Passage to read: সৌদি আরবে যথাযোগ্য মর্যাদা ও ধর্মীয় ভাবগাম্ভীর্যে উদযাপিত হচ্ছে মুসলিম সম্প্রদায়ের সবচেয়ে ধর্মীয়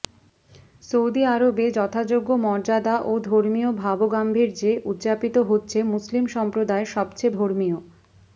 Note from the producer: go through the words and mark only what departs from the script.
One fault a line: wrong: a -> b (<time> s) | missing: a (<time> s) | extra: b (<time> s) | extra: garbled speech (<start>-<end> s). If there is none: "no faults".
no faults